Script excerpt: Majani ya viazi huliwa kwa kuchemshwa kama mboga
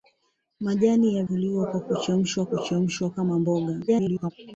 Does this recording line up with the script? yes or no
no